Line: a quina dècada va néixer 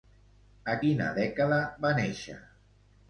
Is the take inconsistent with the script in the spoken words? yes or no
no